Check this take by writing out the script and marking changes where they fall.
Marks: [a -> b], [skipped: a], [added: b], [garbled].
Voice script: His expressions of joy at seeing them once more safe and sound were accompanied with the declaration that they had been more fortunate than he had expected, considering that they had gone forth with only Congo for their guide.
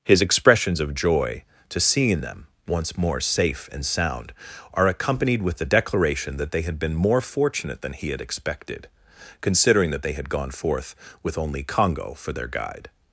His expressions of joy [at -> to] seeing them once more safe and sound [were -> are] accompanied with the declaration that they had been more fortunate than he had expected, considering that they had gone forth with only Congo for their guide.